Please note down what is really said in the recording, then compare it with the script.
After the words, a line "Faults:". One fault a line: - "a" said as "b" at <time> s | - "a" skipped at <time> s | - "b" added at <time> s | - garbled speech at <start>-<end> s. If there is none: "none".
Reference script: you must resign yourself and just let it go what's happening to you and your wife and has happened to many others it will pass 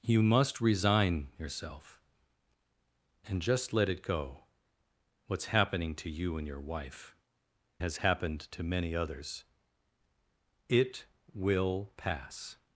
you must resign yourself and just let it go what's happening to you and your wife has happened to many others it will pass
Faults:
- "and" skipped at 7.2 s